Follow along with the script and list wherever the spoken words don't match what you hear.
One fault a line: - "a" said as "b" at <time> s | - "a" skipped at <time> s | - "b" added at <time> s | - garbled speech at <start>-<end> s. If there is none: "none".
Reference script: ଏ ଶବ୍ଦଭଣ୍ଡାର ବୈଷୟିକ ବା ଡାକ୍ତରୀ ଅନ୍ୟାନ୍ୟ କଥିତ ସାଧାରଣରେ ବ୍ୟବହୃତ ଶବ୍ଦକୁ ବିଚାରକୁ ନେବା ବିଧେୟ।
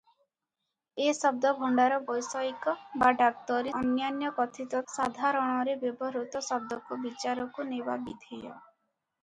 none